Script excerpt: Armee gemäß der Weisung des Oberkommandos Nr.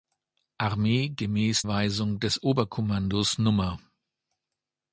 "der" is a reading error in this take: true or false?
true